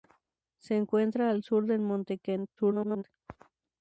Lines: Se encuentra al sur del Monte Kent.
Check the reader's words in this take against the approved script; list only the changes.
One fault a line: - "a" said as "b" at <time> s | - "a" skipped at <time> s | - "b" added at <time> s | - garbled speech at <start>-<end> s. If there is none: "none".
- garbled speech at 2.6-3.0 s